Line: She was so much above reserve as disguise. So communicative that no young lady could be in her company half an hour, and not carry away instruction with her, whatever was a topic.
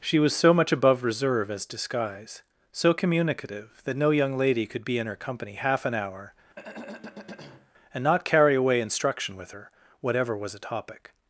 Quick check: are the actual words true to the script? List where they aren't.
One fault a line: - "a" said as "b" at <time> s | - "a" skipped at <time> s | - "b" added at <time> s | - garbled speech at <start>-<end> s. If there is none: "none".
none